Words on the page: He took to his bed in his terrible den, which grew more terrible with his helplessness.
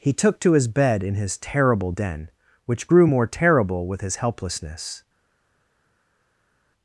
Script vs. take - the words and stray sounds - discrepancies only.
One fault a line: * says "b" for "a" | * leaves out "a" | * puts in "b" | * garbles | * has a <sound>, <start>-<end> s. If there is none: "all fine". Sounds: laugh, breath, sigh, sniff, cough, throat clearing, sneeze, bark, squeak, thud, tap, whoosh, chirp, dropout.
all fine